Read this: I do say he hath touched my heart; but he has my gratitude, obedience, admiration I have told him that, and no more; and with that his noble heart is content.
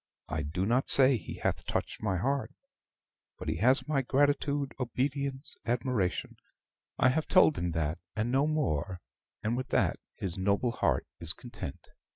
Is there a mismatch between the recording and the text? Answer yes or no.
yes